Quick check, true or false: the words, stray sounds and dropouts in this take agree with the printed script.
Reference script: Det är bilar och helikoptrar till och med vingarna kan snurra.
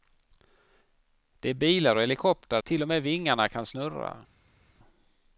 true